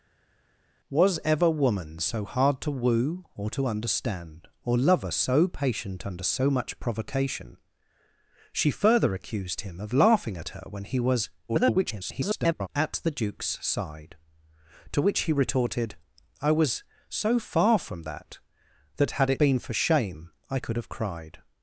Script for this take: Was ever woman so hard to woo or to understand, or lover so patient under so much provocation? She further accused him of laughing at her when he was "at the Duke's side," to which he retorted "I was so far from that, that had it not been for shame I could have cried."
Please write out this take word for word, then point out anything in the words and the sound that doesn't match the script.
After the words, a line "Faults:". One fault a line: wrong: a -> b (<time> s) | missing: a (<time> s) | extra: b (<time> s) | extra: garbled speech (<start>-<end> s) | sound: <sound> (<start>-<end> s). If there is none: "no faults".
Was ever woman so hard to woo or to understand, or lover so patient under so much provocation? She further accused him of laughing at her when he was [garbled] "at the Duke's side," to which he retorted "I was so far from that, that had it been for shame I could have cried."
Faults:
extra: garbled speech (11.5-12.7 s)
missing: not (19.4 s)